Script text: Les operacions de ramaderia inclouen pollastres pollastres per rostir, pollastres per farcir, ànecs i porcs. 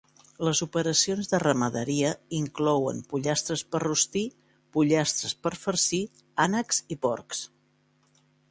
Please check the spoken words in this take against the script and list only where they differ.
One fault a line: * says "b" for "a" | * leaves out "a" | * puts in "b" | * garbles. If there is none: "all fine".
* leaves out "pollastres"